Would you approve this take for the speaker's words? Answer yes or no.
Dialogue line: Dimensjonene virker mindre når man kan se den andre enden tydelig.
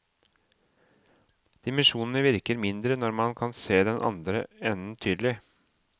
yes